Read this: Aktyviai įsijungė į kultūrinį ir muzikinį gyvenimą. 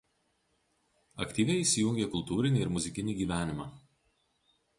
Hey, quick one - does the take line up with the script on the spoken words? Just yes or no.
yes